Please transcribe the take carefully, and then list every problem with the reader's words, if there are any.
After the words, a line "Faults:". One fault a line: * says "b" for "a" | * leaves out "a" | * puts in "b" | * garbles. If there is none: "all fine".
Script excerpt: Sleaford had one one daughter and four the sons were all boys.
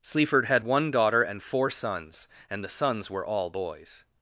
Sleaford had one daughter and four sons, and the sons were all boys.
Faults:
* leaves out "one"
* puts in "sons and"